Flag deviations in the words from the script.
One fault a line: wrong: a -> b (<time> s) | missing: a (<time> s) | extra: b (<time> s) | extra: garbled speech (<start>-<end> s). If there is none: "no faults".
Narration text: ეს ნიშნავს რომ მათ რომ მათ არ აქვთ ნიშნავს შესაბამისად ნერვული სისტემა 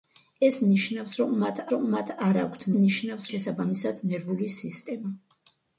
no faults